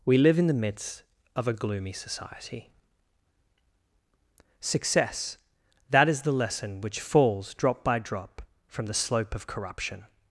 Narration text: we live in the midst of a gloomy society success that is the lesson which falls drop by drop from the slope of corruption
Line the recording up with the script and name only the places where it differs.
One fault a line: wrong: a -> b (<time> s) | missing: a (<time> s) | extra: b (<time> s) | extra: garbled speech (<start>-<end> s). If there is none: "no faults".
no faults